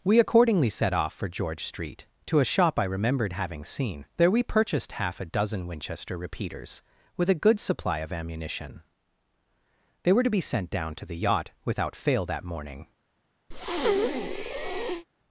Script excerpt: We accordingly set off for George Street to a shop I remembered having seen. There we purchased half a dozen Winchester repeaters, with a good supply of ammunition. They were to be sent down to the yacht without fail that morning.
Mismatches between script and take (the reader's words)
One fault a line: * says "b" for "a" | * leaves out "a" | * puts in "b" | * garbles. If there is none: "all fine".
all fine